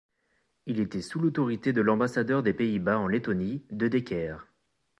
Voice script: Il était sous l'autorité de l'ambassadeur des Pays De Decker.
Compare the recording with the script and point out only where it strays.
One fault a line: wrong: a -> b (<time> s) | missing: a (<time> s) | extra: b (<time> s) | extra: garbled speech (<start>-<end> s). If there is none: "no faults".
extra: Bas en Lettonie (2.8 s)